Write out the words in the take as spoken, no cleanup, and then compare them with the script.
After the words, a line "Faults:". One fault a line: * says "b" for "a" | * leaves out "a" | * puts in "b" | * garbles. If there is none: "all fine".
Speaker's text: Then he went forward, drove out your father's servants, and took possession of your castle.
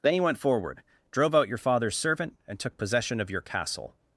Then he went forward, drove out your father's servant, and took possession of your castle.
Faults:
* says "servant" for "servants"